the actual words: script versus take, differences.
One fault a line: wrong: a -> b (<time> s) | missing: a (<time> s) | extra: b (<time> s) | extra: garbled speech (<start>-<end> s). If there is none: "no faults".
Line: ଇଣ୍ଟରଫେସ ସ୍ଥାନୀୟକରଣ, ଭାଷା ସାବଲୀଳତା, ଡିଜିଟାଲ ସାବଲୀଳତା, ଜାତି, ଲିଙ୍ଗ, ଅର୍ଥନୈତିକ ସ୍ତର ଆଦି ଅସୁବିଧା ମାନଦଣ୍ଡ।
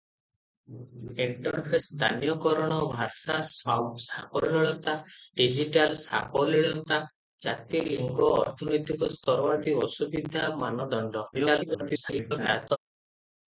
extra: garbled speech (11.3-12.8 s)